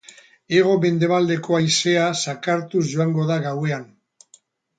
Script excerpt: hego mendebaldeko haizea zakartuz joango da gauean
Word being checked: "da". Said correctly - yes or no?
yes